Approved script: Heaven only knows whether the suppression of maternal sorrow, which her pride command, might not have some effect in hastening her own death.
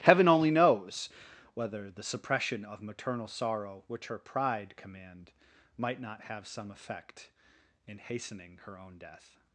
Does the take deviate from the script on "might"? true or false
false